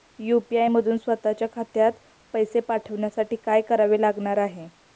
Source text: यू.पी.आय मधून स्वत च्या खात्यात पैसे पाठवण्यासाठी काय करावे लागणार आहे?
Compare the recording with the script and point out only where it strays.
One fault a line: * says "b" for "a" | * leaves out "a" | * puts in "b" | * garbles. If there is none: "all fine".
all fine